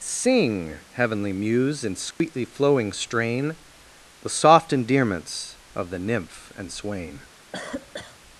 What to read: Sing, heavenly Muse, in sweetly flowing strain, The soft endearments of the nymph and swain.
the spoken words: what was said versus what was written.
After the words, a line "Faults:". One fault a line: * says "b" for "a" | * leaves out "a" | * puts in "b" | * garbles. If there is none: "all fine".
Sing, heavenly Muse, in sweetly flowing strain, The soft endearments of the nymph and swain.
Faults:
all fine